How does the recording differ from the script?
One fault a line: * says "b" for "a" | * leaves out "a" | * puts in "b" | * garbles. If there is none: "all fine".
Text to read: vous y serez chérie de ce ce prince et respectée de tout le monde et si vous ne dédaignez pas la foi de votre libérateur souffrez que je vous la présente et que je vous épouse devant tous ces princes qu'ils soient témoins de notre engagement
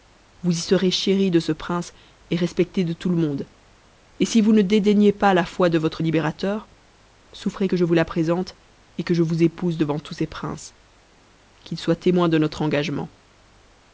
* leaves out "ce"